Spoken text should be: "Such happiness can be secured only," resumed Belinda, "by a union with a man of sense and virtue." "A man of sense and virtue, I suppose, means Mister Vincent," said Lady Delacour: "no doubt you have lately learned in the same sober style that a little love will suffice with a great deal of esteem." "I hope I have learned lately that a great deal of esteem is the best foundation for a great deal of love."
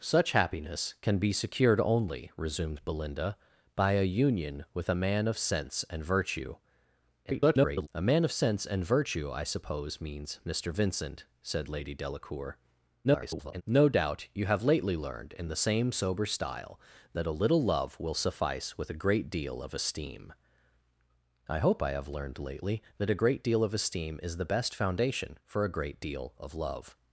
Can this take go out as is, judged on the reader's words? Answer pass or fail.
fail